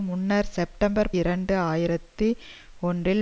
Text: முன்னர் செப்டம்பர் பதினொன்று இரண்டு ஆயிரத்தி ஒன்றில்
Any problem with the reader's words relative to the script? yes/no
yes